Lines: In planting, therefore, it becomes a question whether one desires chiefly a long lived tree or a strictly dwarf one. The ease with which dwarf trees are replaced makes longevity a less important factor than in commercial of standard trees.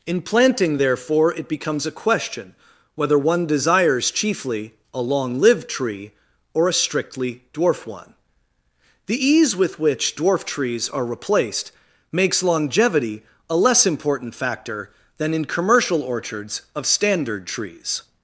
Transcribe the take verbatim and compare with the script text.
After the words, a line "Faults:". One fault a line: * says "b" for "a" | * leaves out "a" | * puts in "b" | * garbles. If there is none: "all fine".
In planting, therefore, it becomes a question whether one desires chiefly a long lived tree or a strictly dwarf one. The ease with which dwarf trees are replaced makes longevity a less important factor than in commercial orchards of standard trees.
Faults:
* puts in "orchards"